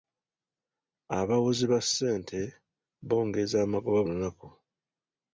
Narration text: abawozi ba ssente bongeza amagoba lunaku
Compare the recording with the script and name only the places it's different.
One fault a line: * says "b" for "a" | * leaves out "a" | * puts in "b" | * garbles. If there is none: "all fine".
all fine